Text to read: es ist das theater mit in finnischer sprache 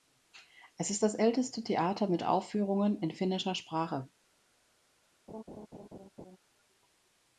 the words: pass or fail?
fail